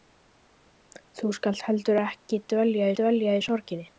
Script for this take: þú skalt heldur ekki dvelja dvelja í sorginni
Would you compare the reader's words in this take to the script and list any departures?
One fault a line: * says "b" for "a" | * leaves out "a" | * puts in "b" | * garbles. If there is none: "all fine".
all fine